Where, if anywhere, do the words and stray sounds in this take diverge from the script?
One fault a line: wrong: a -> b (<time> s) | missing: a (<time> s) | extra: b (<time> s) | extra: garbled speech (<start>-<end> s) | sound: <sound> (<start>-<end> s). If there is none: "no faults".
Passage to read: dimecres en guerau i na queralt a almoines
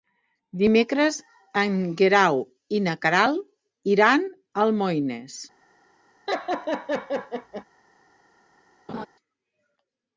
extra: iran (4.0 s)
sound: laugh (6.3-7.6 s)
sound: laugh (8.9-9.1 s)